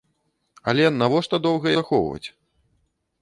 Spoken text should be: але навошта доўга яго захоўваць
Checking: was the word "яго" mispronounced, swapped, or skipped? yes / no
yes